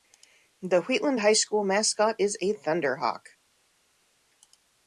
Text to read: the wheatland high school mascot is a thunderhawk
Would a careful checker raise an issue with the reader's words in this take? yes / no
no